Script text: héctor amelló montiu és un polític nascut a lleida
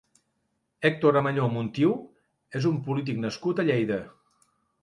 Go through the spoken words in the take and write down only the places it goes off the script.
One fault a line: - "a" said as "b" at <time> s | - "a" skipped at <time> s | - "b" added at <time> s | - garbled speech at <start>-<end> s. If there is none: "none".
none